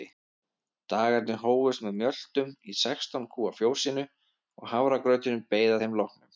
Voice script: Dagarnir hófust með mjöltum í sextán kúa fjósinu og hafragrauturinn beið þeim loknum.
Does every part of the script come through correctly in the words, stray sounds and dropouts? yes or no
yes